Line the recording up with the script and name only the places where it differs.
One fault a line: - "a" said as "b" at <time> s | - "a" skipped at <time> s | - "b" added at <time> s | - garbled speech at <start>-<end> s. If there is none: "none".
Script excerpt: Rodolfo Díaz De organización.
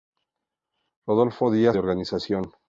none